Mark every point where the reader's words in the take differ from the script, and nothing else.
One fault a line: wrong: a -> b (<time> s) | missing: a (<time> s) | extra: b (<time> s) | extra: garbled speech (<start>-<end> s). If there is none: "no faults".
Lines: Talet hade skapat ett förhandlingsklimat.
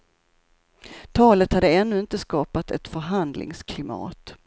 extra: ännu inte (1.7 s)